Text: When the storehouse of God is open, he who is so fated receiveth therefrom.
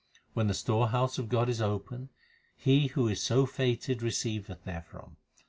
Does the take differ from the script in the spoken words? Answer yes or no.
no